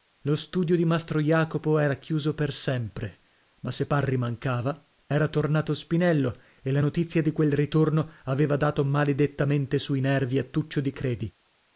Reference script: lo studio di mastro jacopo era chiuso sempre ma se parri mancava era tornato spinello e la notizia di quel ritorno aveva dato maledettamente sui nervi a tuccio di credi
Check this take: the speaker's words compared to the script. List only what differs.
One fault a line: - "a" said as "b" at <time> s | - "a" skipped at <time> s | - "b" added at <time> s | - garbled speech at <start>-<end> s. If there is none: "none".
- "per" added at 2.3 s